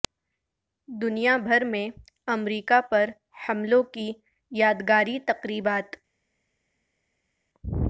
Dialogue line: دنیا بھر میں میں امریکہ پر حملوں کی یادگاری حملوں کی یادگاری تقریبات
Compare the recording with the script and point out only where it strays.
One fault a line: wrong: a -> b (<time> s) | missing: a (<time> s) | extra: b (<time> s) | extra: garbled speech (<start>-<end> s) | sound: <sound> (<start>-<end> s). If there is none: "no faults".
missing: میں (1.9 s)
missing: حملوں کی یادگاری (5.2 s)